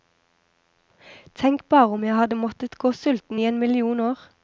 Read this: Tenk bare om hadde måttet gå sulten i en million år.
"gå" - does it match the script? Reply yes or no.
yes